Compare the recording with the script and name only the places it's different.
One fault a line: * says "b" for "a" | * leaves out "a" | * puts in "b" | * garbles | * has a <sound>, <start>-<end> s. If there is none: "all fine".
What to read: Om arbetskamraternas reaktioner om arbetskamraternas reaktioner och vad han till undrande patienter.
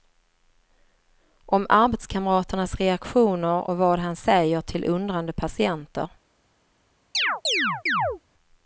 * leaves out "om arbetskamraternas reaktioner"
* puts in "säger"
* has a chirp, 7.1-8.2 s